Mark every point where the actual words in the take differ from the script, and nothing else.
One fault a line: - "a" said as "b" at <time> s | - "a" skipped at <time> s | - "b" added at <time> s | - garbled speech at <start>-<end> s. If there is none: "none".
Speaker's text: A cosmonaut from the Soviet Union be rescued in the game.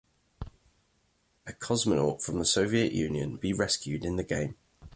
none